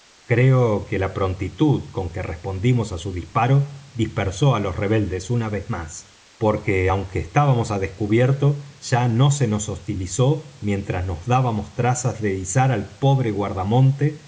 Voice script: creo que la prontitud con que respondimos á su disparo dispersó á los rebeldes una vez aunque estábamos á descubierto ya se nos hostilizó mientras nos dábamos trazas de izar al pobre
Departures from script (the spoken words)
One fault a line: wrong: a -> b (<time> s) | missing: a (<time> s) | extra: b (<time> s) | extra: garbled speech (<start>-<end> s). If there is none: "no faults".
extra: más porque (5.7 s)
extra: no (9.1 s)